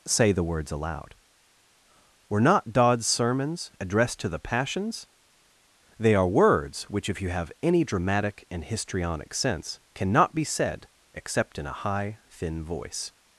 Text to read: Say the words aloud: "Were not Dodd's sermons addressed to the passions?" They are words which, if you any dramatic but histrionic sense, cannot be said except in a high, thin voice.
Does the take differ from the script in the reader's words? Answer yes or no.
yes